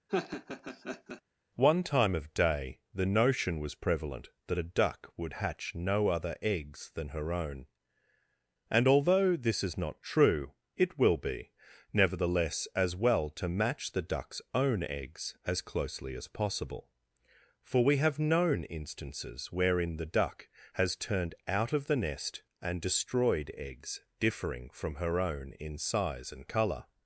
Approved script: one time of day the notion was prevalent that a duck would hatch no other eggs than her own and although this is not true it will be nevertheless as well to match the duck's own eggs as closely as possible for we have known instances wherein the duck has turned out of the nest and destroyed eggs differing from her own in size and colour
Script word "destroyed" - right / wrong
right